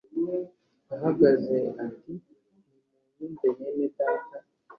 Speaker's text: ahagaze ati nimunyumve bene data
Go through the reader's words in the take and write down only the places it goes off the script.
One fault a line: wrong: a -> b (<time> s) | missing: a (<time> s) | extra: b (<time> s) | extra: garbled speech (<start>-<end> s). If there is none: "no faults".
no faults